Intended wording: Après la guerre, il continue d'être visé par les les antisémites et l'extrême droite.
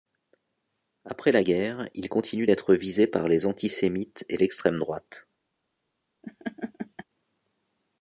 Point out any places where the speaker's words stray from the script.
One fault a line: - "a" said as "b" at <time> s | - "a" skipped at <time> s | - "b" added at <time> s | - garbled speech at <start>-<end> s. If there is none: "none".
- "les" skipped at 3.5 s